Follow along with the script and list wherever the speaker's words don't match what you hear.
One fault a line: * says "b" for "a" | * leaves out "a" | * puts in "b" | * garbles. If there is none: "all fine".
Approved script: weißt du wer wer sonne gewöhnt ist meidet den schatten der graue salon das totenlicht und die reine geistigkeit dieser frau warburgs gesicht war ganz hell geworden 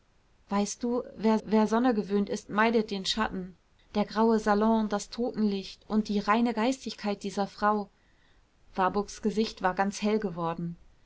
all fine